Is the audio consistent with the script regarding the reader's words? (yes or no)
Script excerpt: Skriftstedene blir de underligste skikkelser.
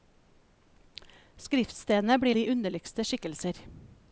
yes